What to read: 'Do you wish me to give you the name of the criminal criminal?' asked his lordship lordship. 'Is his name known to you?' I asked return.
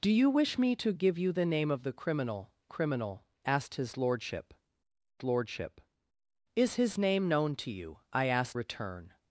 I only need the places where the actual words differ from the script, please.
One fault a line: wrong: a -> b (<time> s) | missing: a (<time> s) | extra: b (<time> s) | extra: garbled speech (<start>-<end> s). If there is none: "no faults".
no faults